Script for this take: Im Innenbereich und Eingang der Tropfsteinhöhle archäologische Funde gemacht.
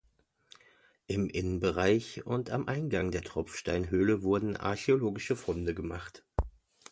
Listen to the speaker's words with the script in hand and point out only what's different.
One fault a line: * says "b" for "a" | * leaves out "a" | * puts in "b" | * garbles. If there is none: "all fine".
* puts in "am"
* puts in "wurden"